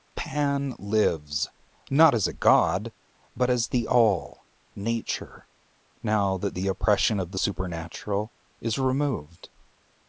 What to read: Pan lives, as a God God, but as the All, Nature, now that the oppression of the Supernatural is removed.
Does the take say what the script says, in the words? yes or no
no